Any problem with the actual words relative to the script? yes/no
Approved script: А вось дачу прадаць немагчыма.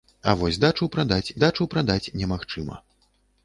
yes